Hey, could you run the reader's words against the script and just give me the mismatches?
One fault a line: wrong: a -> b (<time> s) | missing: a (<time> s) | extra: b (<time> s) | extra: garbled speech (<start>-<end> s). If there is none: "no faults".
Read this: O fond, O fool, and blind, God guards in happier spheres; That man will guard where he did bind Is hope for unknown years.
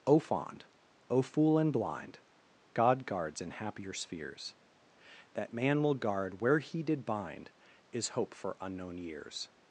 no faults